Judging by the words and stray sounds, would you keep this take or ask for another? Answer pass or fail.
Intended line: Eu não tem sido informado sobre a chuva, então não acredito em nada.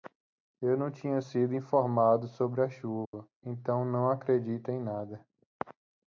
fail